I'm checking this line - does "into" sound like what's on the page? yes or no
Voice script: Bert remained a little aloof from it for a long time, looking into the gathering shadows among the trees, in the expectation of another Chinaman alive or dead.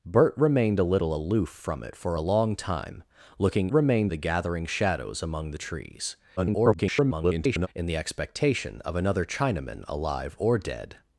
no